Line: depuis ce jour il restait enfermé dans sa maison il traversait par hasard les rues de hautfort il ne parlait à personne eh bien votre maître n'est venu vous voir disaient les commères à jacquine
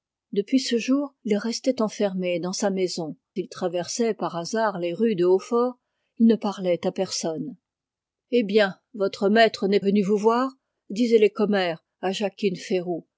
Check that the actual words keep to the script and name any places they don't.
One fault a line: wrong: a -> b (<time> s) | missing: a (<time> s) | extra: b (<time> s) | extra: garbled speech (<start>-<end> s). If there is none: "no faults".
no faults